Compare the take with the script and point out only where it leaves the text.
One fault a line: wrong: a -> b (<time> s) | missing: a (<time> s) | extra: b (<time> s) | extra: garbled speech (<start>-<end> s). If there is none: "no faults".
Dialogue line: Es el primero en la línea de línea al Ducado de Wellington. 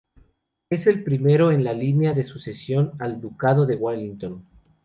wrong: línea -> sucesión (2.3 s)